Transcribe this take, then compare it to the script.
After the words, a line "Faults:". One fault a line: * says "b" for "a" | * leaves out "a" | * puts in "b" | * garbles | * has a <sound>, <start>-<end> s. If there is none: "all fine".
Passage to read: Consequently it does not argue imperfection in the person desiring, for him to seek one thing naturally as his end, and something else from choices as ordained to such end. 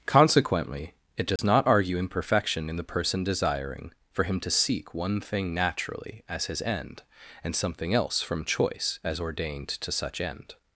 Consequently it does not argue imperfection in the person desiring, for him to seek one thing naturally as his end, and something else from choice as ordained to such end.
Faults:
* has a dropout, 1.4-1.4 s
* says "choice" for "choices"